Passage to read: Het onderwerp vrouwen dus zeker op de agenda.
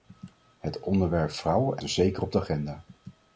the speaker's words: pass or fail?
pass